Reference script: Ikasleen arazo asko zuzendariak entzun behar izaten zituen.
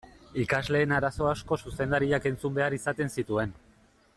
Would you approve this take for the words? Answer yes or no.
yes